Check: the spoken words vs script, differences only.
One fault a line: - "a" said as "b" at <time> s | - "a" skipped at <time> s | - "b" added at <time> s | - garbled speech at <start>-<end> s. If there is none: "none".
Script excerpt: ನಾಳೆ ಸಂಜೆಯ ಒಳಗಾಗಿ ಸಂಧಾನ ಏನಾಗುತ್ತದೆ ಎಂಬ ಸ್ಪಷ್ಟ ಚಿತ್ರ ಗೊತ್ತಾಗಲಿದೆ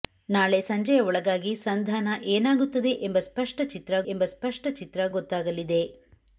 - "ಎಂಬ ಸ್ಪಷ್ಟ ಚಿತ್ರ" added at 4.1 s